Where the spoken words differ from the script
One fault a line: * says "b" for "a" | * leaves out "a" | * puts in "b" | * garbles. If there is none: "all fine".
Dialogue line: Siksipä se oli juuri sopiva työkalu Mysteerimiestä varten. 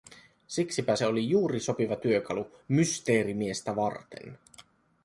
all fine